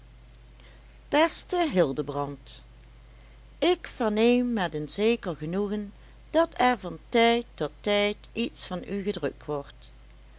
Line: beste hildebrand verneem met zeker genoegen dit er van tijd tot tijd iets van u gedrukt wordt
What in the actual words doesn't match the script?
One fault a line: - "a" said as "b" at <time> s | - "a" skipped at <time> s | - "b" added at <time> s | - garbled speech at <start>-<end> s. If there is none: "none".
- "ik" added at 3.6 s
- "een" added at 4.7 s
- "dit" said as "dat" at 6.3 s